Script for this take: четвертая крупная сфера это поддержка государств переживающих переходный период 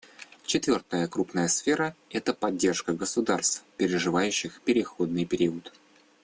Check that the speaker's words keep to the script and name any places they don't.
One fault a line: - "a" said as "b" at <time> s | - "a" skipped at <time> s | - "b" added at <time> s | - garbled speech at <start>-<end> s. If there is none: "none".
none